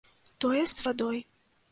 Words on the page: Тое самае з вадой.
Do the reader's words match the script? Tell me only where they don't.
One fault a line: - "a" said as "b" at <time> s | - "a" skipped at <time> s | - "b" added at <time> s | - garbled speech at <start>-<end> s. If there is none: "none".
- "самае" skipped at 0.6 s